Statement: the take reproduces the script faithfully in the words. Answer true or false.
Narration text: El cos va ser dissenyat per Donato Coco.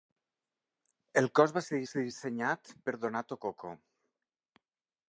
false